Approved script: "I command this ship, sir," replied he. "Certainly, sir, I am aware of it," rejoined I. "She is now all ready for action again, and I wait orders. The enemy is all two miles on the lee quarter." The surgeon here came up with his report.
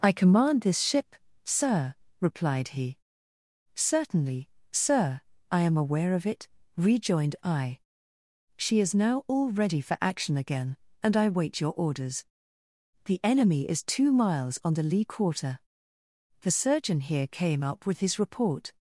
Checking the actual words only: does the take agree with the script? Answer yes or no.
no